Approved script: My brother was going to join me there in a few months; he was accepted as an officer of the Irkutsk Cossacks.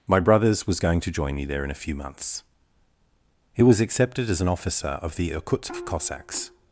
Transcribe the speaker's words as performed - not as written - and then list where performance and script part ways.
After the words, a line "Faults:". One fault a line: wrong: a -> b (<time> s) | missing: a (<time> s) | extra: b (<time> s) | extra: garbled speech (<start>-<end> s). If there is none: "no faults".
My brothers was going to join me there in a few months; he was accepted as an officer of the Irkutsk Cossacks.
Faults:
wrong: brother -> brothers (0.2 s)